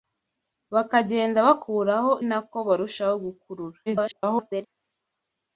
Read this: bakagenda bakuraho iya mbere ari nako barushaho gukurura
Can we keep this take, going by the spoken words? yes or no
no